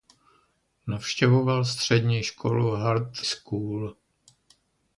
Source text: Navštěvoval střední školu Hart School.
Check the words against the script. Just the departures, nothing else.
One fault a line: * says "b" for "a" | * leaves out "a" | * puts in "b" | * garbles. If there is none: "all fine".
all fine